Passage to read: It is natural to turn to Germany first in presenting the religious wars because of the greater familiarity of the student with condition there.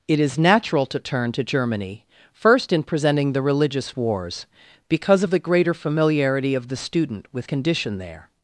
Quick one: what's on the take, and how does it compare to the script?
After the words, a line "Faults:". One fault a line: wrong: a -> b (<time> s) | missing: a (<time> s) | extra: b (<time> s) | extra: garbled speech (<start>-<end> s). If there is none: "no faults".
It is natural to turn to Germany first in presenting the religious wars because of the greater familiarity of the student with condition there.
Faults:
no faults